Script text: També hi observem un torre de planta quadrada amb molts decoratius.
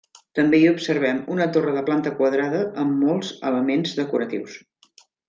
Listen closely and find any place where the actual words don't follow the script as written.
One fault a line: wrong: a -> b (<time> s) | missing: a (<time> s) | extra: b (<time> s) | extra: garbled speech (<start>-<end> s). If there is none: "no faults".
wrong: un -> una (1.4 s)
extra: elements (3.5 s)